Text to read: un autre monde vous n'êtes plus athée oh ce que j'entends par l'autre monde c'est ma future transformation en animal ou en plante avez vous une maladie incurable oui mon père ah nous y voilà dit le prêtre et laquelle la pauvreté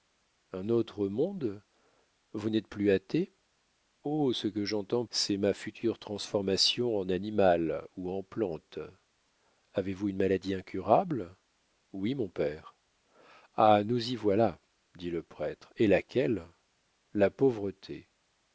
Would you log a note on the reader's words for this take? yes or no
yes